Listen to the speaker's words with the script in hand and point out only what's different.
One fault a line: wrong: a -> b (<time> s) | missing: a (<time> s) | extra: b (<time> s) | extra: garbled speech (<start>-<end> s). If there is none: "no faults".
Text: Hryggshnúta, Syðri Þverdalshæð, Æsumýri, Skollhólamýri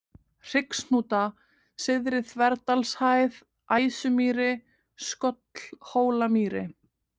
no faults